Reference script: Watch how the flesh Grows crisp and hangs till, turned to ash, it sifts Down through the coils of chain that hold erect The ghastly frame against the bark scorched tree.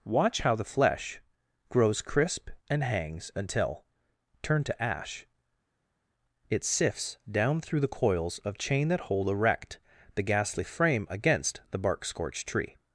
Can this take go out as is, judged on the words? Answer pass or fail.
fail